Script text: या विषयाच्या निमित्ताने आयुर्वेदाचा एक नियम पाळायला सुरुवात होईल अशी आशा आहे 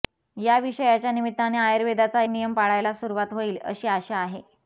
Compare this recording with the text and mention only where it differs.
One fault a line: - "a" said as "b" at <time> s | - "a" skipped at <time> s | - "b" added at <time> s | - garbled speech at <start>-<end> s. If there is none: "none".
- "एक" skipped at 2.2 s